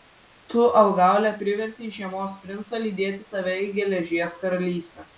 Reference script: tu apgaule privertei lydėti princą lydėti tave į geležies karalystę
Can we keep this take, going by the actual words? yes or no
no